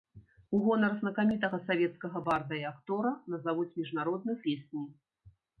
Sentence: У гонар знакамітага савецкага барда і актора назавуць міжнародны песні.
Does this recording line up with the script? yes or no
yes